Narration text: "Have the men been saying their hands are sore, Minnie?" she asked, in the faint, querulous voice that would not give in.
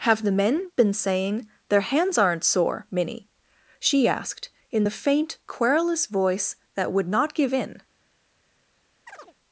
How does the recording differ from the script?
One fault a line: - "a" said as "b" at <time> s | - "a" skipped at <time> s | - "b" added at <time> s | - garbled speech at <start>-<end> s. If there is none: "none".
- "are" said as "aren't" at 2.2 s